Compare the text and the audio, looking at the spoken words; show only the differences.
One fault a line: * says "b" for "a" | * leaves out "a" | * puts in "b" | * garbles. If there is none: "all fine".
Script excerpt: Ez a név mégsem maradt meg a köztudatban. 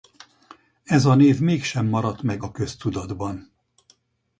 all fine